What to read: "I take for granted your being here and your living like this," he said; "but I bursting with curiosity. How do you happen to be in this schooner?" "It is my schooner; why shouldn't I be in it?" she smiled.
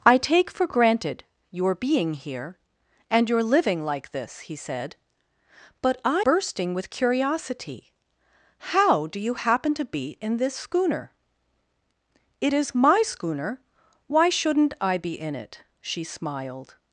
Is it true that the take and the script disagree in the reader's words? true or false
false